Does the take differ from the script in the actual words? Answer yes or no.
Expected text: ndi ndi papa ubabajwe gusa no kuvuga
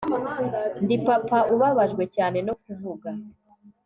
yes